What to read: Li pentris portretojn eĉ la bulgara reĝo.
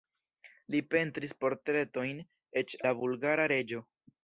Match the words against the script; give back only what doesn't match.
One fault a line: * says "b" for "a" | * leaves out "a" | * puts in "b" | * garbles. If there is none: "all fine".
all fine